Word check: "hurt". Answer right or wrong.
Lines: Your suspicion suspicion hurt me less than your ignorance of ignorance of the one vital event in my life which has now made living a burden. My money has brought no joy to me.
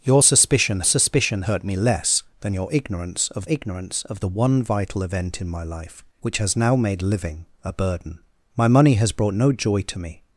right